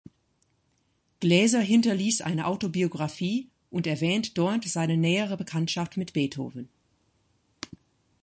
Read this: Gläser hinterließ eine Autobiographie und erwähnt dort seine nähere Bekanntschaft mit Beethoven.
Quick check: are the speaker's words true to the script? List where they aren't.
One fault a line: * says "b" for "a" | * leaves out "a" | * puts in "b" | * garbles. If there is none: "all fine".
all fine